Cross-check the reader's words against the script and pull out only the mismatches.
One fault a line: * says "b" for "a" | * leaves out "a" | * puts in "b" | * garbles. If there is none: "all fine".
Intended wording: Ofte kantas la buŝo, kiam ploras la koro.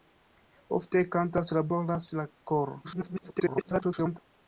* leaves out "buŝo kiam"
* garbles